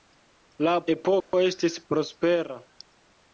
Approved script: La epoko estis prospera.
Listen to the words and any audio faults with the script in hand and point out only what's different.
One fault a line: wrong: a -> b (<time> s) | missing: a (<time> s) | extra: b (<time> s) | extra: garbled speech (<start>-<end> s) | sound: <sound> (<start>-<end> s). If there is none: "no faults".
sound: dropout (1.2-1.3 s)